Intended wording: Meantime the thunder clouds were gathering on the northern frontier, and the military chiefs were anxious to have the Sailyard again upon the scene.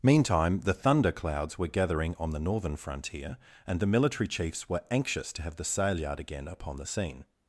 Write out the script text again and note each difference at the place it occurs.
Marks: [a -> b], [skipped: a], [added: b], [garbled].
Meantime the thunder clouds were gathering on the northern frontier, and the military chiefs were anxious to have the Sailyard again upon the scene.